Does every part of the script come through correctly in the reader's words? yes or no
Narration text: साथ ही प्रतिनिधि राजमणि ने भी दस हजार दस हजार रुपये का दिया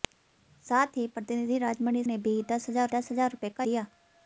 yes